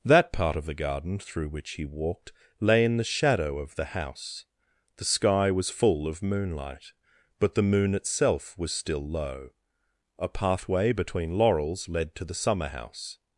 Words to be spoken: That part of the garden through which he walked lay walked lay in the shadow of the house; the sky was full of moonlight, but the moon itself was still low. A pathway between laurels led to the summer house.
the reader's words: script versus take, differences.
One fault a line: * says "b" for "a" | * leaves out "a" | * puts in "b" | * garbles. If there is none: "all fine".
* leaves out "walked lay"